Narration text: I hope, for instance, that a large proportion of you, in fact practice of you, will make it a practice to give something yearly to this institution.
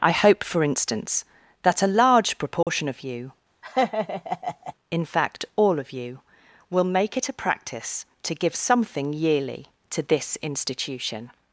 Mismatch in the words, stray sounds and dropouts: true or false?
true